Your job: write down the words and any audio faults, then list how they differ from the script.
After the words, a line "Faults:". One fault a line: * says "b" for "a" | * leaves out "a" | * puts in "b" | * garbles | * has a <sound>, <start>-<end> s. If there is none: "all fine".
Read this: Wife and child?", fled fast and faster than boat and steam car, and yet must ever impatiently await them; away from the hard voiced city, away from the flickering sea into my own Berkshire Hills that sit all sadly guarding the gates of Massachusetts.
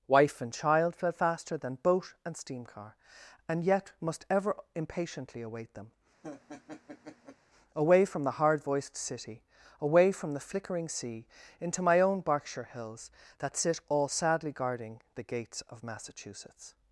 Wife and child?", fled faster than boat and steam car, and yet must ever impatiently await them; away from the hard voiced city, away from the flickering sea into my own Berkshire Hills that sit all sadly guarding the gates of Massachusetts.
Faults:
* leaves out "fast and"
* has a laugh, 6.2-7.4 s